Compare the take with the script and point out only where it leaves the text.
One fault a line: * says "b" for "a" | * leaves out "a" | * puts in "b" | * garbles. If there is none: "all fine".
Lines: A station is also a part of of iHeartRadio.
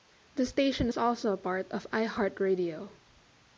* says "The" for "A"
* leaves out "of"